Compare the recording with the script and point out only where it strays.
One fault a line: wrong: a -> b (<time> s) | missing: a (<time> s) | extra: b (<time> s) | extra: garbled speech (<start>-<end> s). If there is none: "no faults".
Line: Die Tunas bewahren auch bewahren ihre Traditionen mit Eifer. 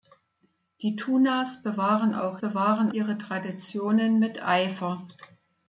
no faults